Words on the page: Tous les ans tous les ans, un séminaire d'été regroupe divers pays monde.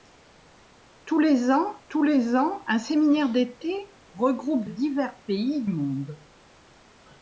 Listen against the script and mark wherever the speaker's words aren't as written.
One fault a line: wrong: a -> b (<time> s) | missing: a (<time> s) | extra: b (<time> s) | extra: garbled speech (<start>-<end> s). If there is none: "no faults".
no faults